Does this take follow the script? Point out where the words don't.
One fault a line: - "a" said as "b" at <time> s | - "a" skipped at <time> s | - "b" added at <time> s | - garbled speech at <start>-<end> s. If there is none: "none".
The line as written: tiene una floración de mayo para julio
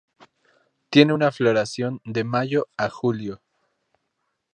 - "para" said as "a" at 2.8 s